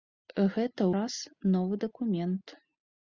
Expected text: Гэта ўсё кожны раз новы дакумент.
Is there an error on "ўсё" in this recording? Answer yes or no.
yes